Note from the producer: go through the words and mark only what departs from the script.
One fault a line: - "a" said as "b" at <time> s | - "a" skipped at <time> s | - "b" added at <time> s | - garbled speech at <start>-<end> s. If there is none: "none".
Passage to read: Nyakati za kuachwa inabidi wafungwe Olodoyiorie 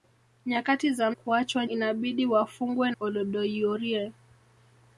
none